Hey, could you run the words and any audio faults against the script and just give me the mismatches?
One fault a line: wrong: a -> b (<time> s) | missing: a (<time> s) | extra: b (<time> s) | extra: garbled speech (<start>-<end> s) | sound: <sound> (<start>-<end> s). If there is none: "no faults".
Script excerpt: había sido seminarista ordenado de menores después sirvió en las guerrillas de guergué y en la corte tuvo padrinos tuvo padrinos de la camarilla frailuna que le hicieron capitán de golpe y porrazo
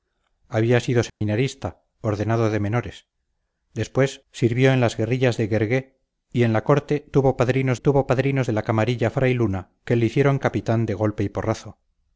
sound: dropout (1.1-1.2 s)